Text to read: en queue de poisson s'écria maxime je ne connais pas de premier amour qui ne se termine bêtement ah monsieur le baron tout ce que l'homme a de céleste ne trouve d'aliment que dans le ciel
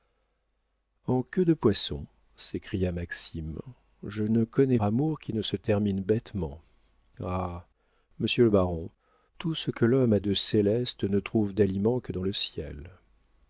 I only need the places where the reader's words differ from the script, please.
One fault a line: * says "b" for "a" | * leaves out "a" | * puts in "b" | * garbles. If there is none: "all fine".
* leaves out "pas de premier"